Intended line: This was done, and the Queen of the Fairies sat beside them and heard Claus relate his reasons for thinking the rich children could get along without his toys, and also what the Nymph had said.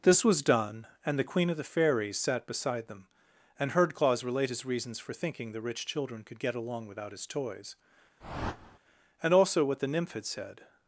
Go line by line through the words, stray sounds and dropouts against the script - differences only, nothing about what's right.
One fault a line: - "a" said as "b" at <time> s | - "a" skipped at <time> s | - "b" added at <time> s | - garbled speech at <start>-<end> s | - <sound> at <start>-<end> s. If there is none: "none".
- whoosh at 8.2-8.8 s